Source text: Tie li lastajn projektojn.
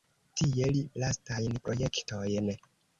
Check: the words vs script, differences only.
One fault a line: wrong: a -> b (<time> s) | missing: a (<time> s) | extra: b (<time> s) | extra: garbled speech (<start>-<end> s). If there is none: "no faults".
no faults